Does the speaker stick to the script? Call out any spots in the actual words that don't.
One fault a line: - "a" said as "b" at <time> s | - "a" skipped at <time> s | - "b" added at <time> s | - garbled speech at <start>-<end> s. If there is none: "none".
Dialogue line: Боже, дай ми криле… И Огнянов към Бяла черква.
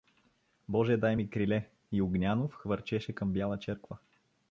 - "хвърчеше" added at 2.5 s